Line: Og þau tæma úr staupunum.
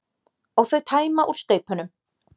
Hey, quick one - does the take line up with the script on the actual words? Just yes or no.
yes